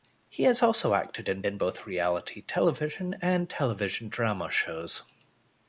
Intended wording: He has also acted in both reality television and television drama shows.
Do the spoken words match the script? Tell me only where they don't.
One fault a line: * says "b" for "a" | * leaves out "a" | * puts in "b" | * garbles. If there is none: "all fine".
* puts in "in"